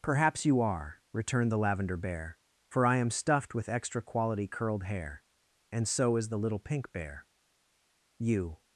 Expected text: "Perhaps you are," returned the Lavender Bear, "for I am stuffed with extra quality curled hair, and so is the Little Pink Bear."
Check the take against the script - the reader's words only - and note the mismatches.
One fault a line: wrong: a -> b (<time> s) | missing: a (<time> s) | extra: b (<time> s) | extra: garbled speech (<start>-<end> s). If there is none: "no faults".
extra: You (8.2 s)